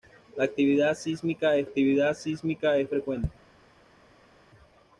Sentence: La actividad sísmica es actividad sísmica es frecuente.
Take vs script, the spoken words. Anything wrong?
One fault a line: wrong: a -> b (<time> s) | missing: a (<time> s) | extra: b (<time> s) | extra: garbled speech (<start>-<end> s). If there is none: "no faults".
no faults